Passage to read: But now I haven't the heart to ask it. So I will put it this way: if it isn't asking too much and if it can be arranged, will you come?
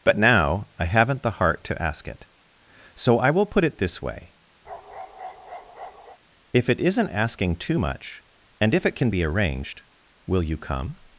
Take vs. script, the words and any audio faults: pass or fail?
fail